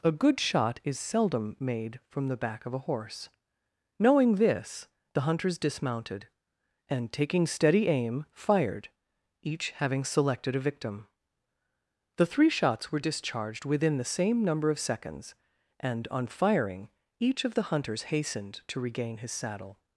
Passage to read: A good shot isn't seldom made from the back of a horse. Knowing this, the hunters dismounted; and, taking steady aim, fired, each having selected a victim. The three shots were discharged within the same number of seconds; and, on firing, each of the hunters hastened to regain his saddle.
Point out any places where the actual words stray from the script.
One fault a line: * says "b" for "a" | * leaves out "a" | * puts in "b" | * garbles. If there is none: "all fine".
* says "is" for "isn't"